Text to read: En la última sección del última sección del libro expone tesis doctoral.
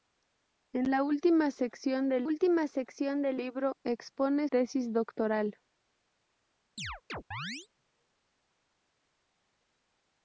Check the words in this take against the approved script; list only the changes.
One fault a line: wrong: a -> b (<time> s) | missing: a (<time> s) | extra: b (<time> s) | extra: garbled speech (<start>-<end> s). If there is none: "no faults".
no faults